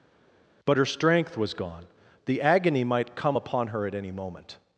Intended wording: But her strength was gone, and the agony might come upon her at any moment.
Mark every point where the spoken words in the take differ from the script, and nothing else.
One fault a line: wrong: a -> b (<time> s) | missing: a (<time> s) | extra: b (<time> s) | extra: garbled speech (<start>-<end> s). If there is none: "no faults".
missing: and (1.9 s)